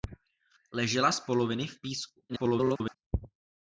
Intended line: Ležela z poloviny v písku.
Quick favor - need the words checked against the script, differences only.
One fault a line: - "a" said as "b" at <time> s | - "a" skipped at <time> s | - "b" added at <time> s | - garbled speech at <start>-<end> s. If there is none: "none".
- garbled speech at 2.3-3.0 s